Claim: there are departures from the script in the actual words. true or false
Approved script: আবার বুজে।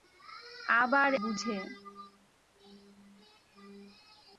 false